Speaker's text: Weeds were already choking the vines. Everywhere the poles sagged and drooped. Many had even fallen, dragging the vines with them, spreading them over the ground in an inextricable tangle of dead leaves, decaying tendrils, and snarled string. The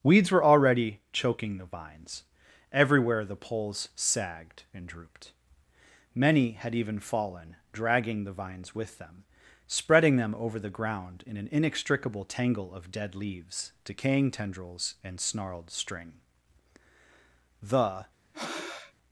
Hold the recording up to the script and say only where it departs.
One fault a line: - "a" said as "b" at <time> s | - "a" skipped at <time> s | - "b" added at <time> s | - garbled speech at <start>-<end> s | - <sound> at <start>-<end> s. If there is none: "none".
- breath at 18.3-18.9 s